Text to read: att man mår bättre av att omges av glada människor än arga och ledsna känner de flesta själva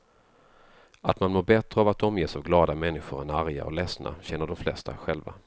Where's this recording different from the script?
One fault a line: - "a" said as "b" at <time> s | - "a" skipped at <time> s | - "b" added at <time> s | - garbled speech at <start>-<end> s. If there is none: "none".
none